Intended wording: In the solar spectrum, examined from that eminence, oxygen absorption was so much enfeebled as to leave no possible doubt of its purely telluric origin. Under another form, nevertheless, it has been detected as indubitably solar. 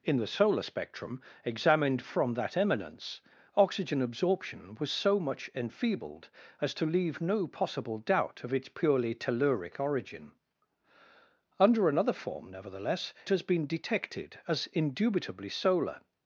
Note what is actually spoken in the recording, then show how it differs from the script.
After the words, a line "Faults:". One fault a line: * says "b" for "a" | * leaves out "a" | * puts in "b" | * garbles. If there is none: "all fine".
In the solar spectrum, examined from that eminence, oxygen absorption was so much enfeebled as to leave no possible doubt of its purely telluric origin. Under another form, nevertheless, has been detected as indubitably solar.
Faults:
* leaves out "it"